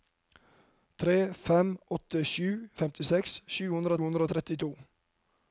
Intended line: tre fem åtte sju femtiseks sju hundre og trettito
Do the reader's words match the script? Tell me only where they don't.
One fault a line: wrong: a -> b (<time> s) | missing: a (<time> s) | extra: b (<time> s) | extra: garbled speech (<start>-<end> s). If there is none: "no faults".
extra: hundre (4.0 s)